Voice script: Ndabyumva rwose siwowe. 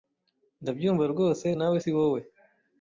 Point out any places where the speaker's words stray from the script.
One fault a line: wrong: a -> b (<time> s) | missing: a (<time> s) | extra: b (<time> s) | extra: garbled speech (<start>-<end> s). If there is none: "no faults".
extra: nawe (1.6 s)